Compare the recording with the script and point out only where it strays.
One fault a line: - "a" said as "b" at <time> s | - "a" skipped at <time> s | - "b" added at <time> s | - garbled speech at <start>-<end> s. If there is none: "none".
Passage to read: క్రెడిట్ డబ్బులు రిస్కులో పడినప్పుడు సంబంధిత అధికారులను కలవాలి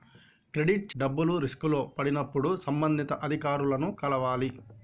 none